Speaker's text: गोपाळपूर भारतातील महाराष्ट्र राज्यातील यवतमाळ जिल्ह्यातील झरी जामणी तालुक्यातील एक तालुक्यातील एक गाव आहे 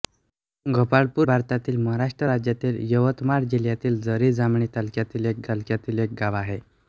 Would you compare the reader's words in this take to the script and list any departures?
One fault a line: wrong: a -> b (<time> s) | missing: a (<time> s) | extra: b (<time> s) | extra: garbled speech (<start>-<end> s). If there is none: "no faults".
no faults